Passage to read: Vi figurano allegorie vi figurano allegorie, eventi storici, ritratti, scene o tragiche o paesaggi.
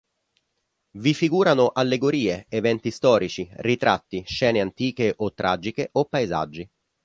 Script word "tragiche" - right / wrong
right